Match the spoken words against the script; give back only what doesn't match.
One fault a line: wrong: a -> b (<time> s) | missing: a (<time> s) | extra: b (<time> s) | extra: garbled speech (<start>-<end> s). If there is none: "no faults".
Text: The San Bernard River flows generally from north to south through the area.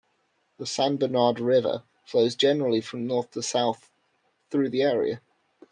no faults